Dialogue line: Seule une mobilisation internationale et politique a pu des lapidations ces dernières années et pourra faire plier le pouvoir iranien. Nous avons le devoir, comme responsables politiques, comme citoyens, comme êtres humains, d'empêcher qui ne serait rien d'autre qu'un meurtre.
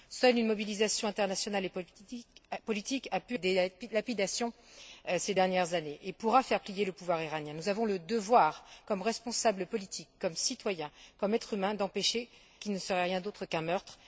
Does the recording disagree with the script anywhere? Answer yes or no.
no